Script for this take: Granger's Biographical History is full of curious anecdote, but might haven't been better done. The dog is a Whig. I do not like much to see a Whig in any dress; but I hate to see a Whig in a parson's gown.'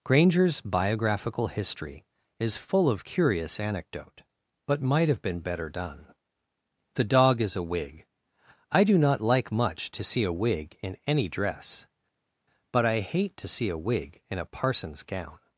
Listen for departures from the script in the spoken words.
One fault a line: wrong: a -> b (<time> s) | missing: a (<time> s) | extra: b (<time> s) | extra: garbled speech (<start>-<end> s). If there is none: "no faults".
wrong: haven't -> have (5.1 s)